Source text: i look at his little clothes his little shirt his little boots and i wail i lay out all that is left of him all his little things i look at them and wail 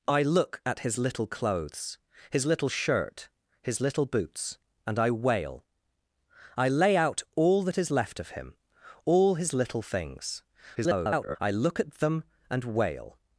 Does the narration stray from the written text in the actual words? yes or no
yes